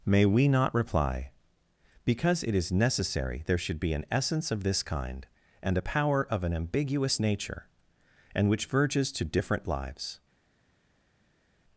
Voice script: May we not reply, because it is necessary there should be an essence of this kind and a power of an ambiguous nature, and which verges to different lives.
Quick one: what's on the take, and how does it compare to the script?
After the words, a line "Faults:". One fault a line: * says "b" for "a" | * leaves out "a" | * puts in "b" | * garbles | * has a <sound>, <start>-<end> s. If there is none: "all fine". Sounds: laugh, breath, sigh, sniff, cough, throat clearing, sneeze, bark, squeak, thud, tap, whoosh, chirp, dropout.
May we not reply, because it is necessary there should be an essence of this kind and a power of an ambiguous nature, and which verges to different lives.
Faults:
all fine